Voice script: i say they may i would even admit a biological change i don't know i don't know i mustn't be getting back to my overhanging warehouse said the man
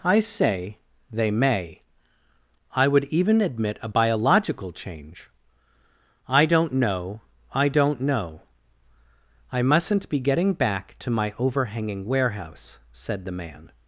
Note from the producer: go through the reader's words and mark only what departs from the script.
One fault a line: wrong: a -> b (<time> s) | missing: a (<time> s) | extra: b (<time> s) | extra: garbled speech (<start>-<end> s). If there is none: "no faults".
no faults